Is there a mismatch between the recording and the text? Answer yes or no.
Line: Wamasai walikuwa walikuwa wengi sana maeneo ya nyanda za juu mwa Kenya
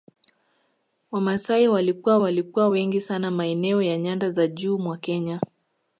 no